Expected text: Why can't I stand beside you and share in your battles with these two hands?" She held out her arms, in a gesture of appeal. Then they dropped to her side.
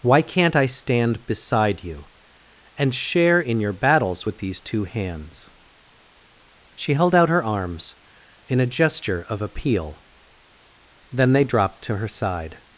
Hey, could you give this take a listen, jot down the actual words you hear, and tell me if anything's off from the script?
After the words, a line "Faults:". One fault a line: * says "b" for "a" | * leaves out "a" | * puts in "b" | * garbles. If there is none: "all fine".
Why can't I stand beside you and share in your battles with these two hands?" She held out her arms, in a gesture of appeal. Then they dropped to her side.
Faults:
all fine